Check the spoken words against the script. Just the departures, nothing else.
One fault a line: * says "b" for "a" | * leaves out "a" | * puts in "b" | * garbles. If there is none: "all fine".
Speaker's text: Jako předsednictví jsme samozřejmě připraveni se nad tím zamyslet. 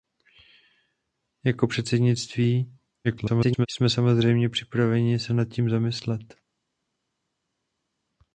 * garbles